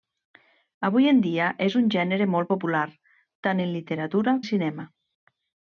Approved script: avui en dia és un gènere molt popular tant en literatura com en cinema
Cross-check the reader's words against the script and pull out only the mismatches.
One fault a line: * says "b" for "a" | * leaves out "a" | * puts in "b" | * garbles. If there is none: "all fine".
* leaves out "com"